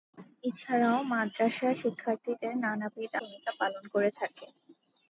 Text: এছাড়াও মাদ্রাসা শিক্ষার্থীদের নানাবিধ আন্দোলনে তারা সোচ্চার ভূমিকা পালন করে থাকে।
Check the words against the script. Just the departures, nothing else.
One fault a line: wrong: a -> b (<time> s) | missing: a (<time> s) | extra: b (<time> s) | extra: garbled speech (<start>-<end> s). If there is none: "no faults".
missing: আন্দোলনে তারা সোচ্চার (3.1 s)